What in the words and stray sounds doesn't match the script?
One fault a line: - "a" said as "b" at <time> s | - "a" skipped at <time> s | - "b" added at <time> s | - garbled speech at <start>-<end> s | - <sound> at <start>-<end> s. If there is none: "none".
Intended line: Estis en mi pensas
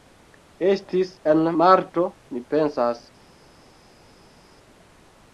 - "marto" added at 1.6 s